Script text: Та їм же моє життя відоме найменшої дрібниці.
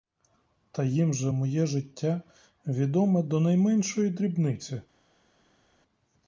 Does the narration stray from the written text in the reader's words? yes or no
yes